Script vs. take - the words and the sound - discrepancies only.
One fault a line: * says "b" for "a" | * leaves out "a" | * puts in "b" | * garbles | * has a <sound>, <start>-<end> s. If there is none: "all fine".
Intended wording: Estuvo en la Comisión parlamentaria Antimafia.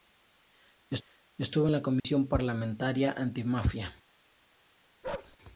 * has a dropout, 2.0-2.0 s
* has a bark, 5.0-5.4 s